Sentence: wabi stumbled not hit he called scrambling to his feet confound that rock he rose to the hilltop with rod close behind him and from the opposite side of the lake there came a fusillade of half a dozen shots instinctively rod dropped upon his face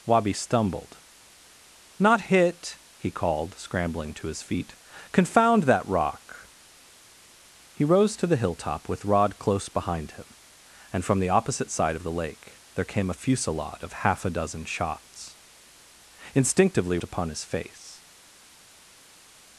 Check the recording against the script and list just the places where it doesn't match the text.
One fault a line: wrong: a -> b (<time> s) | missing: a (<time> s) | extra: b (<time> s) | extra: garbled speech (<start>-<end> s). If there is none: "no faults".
missing: rod dropped (17.0 s)